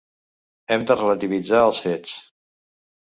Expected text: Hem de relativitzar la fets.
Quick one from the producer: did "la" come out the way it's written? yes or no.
no